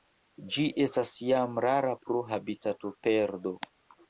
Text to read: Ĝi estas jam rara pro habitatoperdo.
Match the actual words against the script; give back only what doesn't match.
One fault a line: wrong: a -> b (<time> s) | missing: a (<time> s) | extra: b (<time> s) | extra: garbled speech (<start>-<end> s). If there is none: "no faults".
no faults